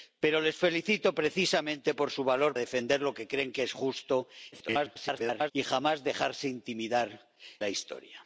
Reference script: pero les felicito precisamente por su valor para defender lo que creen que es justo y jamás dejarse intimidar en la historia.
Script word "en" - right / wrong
wrong